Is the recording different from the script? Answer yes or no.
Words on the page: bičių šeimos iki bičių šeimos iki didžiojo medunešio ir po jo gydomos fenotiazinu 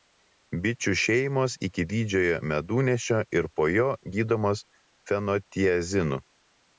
yes